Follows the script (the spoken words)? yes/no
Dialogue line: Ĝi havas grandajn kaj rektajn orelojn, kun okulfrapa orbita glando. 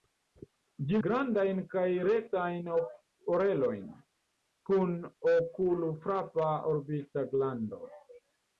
no